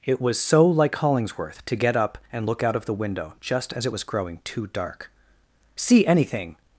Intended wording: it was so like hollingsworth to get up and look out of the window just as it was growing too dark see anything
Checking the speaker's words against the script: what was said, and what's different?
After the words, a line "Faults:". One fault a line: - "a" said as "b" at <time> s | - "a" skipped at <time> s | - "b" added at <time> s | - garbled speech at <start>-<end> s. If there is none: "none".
it was so like hollingsworth to get up and look out of the window just as it was growing too dark see anything
Faults:
none